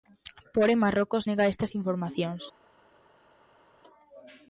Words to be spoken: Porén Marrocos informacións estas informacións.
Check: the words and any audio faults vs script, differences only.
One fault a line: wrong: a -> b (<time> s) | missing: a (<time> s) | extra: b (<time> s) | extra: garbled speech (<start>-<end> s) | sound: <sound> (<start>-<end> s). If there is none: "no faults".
wrong: informacións -> nega (1.3 s)